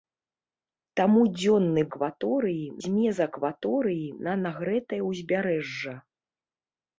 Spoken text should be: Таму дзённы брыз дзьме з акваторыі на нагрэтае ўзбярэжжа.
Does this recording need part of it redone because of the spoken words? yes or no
yes